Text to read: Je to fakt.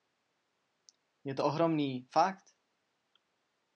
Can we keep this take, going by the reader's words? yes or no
no